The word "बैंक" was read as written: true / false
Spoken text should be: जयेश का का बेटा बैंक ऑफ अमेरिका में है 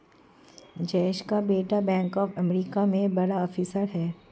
true